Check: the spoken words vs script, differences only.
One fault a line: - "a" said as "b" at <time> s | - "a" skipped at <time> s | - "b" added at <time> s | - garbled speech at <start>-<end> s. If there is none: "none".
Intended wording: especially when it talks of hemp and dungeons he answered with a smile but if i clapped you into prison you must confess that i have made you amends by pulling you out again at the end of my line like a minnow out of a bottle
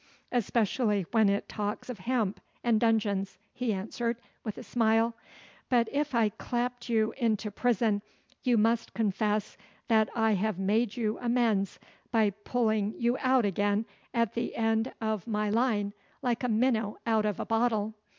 none